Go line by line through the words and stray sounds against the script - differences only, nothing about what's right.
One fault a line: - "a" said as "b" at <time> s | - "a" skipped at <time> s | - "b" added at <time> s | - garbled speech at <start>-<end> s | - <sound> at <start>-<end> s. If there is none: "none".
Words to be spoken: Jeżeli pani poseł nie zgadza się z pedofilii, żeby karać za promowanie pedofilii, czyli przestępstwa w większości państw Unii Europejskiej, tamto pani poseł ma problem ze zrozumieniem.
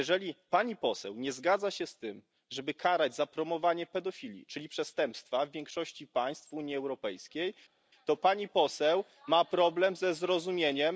- "pedofilii" said as "tym" at 2.0 s
- "tamto" said as "to" at 8.1 s